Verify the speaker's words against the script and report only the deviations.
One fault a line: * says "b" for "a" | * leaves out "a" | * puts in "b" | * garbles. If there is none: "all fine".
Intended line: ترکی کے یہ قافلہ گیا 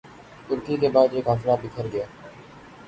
* puts in "بعد"
* puts in "بکھر"